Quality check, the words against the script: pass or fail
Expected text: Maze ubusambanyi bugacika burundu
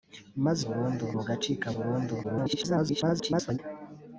fail